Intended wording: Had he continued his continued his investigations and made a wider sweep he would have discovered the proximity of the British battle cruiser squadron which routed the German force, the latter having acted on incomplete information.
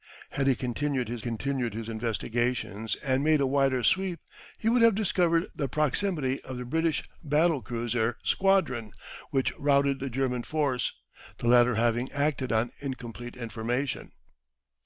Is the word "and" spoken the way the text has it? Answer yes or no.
yes